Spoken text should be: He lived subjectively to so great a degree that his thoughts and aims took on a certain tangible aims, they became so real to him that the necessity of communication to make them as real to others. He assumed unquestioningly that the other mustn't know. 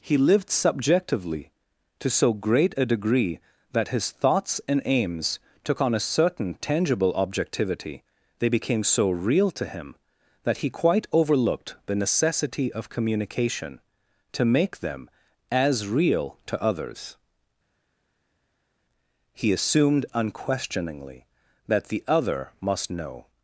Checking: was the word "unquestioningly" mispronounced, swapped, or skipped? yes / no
no